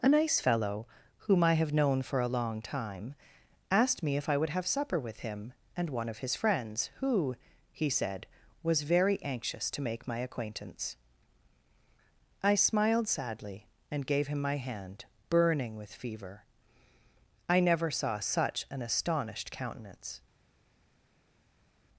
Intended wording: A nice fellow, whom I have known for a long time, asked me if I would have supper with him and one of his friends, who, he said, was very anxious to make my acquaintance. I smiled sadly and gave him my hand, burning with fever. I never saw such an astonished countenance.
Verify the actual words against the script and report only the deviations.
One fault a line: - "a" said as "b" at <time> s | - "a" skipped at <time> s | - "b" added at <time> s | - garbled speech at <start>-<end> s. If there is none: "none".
none